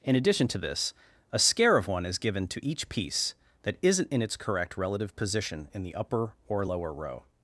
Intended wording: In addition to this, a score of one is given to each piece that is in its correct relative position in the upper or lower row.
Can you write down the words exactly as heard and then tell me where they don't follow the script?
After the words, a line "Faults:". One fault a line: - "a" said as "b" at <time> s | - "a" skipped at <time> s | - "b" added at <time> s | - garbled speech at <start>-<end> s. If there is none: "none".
In addition to this, a scare of one is given to each piece that isn't in its correct relative position in the upper or lower row.
Faults:
- "score" said as "scare" at 1.4 s
- "is" said as "isn't" at 3.8 s